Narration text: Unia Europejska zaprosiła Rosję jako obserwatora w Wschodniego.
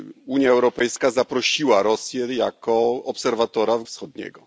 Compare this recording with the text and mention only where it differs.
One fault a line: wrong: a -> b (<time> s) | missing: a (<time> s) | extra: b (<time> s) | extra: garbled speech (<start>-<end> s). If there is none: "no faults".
no faults